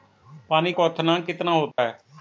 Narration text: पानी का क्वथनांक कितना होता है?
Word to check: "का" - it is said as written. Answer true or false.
false